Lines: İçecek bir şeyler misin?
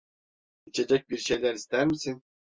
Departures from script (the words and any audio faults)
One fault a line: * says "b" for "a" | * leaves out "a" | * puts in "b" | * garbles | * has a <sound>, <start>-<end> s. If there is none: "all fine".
* puts in "ister"